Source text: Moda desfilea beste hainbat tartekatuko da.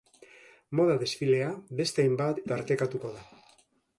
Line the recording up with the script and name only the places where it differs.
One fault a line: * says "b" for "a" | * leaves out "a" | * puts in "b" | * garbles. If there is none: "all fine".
all fine